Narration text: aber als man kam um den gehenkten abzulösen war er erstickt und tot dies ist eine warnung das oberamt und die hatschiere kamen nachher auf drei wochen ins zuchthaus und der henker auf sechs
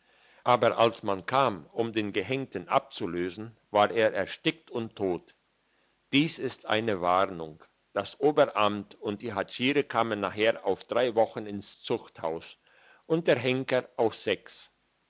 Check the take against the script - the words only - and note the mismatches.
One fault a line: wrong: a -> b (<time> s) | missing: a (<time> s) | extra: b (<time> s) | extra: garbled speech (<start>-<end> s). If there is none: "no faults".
no faults